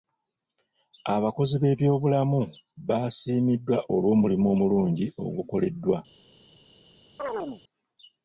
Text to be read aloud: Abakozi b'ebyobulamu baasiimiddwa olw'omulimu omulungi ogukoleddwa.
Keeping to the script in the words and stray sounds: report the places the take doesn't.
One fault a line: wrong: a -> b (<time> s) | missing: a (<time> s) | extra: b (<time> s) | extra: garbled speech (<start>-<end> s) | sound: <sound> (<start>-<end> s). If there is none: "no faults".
sound: chirp (7.2-7.6 s)